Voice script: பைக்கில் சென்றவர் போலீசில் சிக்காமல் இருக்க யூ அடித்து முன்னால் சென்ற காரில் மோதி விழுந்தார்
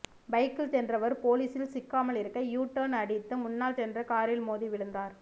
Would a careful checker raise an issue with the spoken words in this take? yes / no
yes